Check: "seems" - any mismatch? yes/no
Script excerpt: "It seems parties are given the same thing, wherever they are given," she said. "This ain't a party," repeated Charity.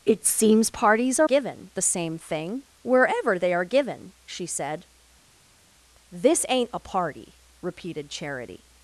no